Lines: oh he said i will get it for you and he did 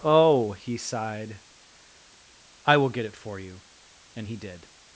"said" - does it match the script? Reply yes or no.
no